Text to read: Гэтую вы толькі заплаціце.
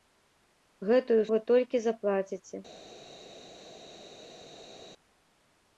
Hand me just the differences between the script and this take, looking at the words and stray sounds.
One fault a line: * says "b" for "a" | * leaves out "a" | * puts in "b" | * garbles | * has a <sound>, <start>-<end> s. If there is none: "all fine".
all fine